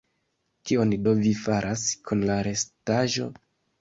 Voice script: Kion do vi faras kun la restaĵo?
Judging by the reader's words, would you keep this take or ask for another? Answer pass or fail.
pass